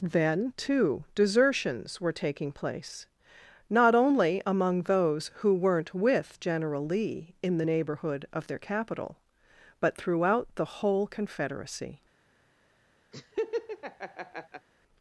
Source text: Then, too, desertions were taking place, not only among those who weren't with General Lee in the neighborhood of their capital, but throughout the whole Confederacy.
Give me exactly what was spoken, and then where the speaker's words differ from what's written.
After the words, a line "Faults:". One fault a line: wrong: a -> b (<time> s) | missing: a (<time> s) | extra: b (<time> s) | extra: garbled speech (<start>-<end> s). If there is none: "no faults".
Then, too, desertions were taking place, not only among those who weren't with General Lee in the neighborhood of their capital, but throughout the whole Confederacy.
Faults:
no faults